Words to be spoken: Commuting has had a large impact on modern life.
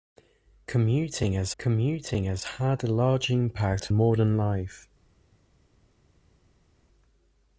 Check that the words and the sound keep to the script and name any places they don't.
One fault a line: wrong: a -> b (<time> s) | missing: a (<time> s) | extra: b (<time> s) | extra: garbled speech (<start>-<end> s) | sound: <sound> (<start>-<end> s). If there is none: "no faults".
extra: commuting has (1.6 s)
missing: on (3.9 s)